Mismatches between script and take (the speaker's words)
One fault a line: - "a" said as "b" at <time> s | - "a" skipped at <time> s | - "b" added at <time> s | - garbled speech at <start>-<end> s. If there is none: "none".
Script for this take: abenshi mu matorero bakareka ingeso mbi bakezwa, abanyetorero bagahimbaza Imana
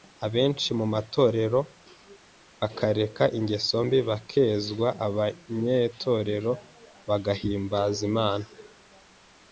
none